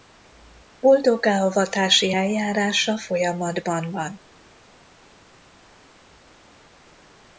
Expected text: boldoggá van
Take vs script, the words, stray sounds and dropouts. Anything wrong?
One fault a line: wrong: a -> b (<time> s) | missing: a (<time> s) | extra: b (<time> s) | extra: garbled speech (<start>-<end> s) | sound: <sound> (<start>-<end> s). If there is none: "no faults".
extra: avatási eljárása folyamatban (1.4 s)